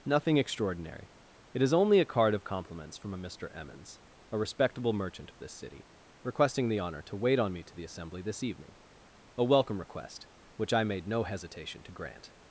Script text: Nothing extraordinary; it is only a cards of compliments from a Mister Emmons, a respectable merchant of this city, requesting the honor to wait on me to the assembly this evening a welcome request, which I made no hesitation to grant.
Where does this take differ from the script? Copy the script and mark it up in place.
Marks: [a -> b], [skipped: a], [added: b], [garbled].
Nothing extraordinary; it is only a [cards -> card] of compliments from a Mister Emmons, a respectable merchant of this city, requesting the honor to wait on me to the assembly this evening a welcome request, which I made no hesitation to grant.